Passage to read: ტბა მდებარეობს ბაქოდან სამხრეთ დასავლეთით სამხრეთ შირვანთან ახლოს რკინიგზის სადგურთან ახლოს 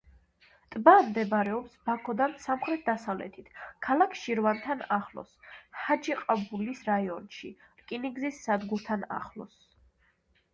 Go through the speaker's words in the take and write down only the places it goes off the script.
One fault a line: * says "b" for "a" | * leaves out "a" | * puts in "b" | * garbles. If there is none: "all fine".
* says "ქალაქ" for "სამხრეთ"
* puts in "ჰაჯიყაბულის რაიონში"